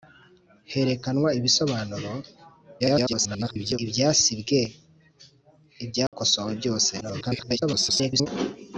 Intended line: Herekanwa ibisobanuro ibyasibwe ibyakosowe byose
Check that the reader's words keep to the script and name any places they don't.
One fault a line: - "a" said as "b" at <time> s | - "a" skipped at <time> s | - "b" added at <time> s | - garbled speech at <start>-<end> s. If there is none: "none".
- garbled speech at 2.8-3.8 s
- garbled speech at 7.0-8.3 s